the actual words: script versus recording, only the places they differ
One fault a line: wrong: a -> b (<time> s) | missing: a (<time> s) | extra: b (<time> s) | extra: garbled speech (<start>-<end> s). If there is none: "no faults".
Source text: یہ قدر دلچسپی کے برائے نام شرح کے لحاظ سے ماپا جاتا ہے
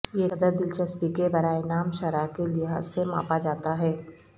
no faults